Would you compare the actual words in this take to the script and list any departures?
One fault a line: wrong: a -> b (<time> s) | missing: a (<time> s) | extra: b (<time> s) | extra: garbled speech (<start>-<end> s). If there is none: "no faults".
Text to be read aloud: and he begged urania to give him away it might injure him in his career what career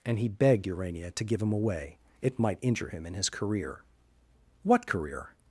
no faults